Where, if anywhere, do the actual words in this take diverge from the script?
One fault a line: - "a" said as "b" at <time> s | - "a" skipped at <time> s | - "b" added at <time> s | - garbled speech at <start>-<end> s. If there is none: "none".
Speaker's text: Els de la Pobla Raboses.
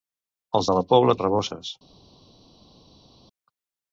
none